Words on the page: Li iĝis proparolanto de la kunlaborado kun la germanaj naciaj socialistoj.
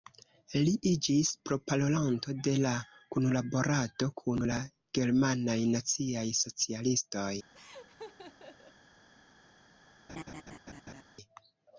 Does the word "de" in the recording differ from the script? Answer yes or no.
no